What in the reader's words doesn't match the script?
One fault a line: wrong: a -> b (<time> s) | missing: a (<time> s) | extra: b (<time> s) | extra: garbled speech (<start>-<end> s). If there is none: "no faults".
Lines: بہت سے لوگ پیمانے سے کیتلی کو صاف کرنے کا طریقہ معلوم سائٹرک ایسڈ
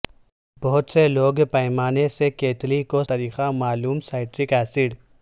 missing: صاف کرنے کا (3.0 s)